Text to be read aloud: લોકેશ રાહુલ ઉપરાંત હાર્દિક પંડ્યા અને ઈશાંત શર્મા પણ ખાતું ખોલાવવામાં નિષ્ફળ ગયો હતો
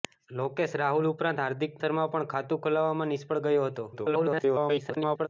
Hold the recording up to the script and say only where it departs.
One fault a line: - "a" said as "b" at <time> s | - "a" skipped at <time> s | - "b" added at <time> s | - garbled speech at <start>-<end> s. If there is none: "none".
- "પંડ્યા અને ઈશાંત" skipped at 1.8 s
- garbled speech at 3.9-5.3 s